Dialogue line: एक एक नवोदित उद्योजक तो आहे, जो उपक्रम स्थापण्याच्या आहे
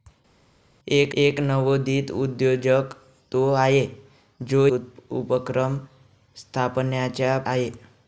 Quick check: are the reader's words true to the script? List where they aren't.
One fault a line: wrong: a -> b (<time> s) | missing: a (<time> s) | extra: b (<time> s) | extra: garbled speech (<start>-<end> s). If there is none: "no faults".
no faults